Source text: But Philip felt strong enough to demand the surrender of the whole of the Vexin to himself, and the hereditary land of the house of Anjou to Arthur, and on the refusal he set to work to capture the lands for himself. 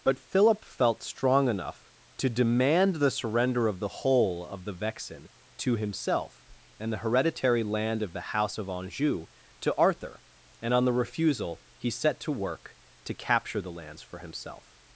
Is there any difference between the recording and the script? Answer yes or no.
no